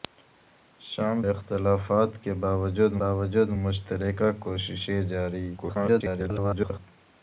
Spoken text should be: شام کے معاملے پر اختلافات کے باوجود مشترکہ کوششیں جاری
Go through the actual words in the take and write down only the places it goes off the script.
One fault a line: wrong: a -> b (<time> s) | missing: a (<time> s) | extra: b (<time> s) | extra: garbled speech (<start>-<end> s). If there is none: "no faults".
missing: کے معاملے پر (1.2 s)
extra: باوجود (3.0 s)
extra: garbled speech (5.6-6.8 s)